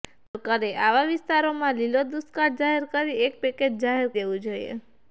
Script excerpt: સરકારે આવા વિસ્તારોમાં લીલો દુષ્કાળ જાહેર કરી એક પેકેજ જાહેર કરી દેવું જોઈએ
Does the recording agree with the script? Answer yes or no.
no